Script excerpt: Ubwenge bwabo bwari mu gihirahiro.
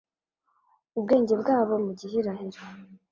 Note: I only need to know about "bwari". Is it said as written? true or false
false